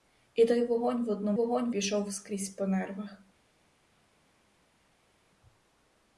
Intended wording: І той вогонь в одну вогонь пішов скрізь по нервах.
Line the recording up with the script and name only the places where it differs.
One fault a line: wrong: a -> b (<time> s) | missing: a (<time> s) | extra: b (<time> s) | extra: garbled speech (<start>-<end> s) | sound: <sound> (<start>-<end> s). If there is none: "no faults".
no faults